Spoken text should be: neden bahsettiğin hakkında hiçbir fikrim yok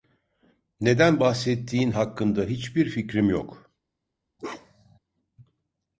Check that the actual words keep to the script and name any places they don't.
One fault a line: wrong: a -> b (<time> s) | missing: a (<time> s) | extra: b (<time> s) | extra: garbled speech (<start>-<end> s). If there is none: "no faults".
no faults